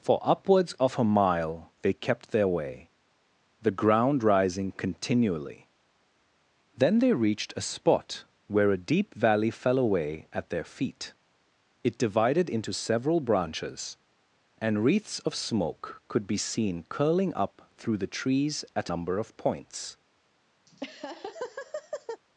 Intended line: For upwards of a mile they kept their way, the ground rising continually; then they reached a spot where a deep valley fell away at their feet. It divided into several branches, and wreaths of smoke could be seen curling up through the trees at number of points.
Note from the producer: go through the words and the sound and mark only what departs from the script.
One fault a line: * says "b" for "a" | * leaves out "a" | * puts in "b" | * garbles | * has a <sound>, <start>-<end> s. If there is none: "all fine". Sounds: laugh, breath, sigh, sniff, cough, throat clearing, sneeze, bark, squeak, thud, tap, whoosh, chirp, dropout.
* has a laugh, 20.7-22.2 s